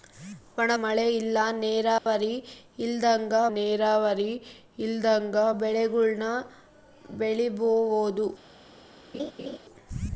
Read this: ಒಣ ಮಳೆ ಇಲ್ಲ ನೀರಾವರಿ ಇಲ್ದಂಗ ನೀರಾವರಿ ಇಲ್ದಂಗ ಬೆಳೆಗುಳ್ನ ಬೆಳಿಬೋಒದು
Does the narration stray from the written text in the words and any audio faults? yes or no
yes